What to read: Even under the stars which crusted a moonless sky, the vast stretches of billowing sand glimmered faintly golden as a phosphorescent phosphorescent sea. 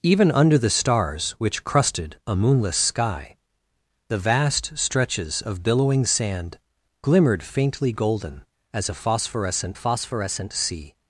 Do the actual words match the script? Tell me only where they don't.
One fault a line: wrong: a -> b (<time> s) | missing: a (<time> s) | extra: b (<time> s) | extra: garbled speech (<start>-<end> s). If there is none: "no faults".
no faults